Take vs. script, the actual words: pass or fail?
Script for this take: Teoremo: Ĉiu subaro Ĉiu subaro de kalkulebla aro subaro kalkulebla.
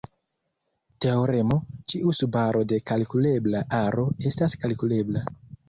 fail